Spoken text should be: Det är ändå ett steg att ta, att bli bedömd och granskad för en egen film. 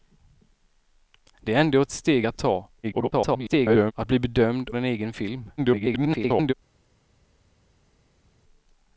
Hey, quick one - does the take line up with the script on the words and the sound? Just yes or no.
no